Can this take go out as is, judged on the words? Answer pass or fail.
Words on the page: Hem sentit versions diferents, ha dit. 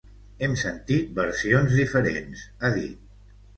pass